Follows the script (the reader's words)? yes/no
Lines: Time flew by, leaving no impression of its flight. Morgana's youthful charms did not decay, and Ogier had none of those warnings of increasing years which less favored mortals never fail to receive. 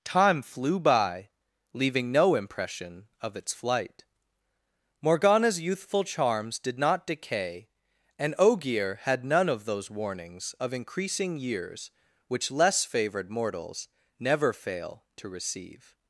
yes